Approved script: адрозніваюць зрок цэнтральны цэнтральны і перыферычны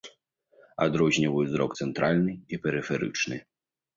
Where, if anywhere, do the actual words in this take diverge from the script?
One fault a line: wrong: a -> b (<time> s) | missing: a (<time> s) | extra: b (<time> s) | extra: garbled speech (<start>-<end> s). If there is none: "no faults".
missing: цэнтральны (2.3 s)